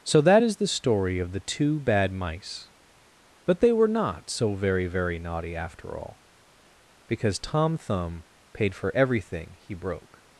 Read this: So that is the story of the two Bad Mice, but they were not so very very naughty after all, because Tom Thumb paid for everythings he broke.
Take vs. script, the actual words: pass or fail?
fail